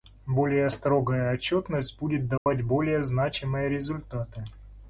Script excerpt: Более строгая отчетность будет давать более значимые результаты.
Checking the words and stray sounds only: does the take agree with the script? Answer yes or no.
no